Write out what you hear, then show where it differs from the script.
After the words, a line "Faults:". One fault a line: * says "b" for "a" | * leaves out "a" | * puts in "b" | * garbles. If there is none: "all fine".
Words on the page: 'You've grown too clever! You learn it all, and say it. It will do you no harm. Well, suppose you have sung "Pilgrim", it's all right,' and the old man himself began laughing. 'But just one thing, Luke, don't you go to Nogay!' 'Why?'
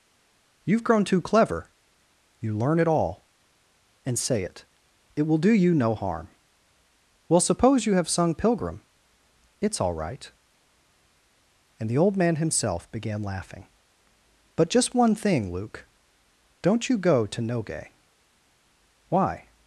'You've grown too clever! You learn it all, and say it. It will do you no harm. Well, suppose you have sung "Pilgrim", it's all right,' and the old man himself began laughing. 'But just one thing, Luke, don't you go to Nogay!' 'Why?'
Faults:
all fine